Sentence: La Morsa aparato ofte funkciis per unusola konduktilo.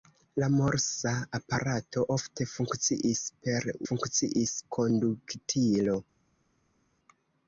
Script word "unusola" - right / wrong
wrong